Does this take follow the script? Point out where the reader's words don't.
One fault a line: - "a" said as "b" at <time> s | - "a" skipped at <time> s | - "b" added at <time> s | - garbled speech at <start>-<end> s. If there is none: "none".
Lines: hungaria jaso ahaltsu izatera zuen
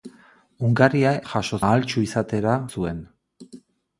none